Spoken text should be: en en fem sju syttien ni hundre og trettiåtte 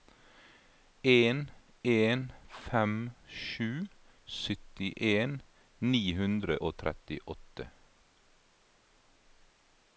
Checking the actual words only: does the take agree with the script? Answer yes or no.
yes